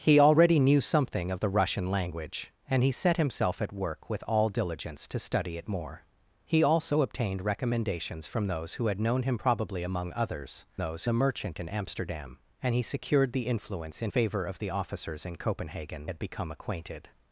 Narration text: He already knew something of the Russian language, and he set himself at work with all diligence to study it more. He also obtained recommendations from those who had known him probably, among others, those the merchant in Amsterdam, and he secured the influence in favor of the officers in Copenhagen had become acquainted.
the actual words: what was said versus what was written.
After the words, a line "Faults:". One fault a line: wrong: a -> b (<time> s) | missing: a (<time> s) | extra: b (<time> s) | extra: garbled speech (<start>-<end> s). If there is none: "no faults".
He already knew something of the Russian language, and he set himself at work with all diligence to study it more. He also obtained recommendations from those who had known him probably, among others, those the merchant in Amsterdam, and he secured the influence in favor of the officers in Copenhagen had become acquainted.
Faults:
no faults